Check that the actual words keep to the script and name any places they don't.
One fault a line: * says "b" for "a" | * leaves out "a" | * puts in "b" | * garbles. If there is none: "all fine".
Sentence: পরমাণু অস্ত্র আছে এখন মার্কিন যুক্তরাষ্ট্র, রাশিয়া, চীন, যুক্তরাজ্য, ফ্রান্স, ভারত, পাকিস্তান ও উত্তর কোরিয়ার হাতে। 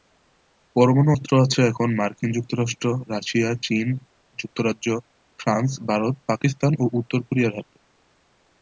all fine